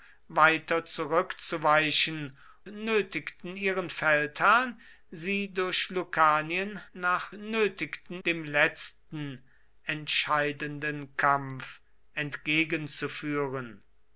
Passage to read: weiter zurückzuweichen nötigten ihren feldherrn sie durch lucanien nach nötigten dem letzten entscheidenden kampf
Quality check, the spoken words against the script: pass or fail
pass